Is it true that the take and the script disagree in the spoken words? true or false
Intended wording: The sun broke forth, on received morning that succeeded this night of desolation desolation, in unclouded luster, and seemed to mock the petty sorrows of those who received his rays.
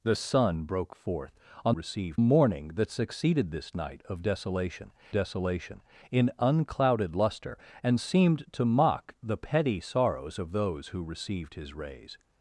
false